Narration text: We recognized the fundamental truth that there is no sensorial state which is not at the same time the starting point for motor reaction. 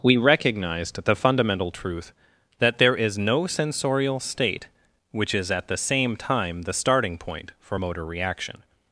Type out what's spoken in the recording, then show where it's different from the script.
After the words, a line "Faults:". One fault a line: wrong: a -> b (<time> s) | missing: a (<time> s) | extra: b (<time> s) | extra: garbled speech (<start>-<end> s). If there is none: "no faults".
We recognized the fundamental truth that there is no sensorial state which is at the same time the starting point for motor reaction.
Faults:
missing: not (5.5 s)